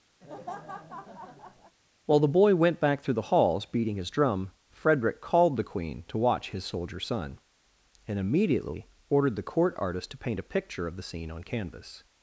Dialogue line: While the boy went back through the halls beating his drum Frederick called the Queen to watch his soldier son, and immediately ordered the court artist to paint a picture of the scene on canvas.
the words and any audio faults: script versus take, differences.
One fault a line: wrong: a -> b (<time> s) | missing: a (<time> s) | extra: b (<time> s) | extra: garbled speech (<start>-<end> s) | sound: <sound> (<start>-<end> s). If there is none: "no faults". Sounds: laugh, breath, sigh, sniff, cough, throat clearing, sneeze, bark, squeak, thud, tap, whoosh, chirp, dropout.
sound: laugh (0.2-1.8 s)